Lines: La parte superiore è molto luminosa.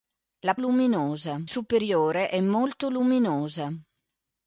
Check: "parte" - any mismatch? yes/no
yes